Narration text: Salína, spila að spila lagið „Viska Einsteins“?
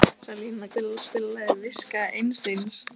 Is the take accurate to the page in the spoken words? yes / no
yes